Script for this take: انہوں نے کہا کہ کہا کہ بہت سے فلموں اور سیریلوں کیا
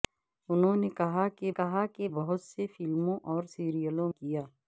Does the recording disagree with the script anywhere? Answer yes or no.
no